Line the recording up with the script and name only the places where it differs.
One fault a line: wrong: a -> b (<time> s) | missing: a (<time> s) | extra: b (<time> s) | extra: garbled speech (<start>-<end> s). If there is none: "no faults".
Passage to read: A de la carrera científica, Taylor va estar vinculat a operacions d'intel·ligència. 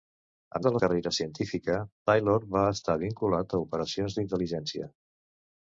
no faults